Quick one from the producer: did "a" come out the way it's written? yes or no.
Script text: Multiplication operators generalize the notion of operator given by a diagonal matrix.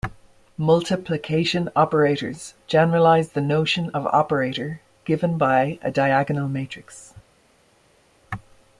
yes